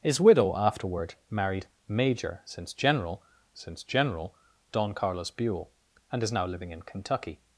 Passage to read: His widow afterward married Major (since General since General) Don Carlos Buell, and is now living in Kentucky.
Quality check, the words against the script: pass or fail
pass